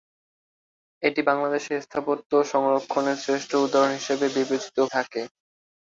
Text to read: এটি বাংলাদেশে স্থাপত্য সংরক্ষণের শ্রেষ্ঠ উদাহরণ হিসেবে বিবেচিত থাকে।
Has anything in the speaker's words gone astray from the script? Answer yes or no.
no